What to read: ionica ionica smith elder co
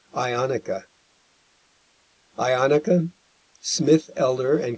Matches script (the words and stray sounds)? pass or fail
pass